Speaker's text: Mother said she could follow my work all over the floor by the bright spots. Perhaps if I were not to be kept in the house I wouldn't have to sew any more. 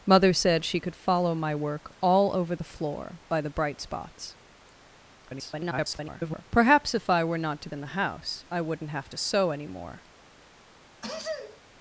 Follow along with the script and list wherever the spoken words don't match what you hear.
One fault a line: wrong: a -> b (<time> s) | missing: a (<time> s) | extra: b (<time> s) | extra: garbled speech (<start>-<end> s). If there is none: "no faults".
extra: garbled speech (5.2-6.4 s)
missing: be kept (7.7 s)